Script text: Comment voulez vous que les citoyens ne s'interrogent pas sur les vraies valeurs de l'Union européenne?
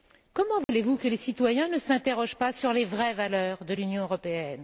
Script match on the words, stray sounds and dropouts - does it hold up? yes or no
no